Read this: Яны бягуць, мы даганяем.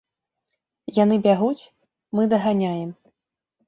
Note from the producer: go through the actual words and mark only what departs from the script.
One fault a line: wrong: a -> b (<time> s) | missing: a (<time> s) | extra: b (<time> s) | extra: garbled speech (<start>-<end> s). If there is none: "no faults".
no faults